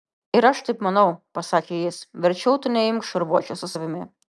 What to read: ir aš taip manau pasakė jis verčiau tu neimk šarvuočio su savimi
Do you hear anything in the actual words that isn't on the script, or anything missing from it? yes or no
no